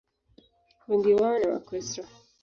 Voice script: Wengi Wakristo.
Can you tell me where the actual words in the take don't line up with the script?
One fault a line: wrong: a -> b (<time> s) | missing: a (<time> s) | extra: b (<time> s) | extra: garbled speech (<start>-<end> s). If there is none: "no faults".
extra: wao ni (1.1 s)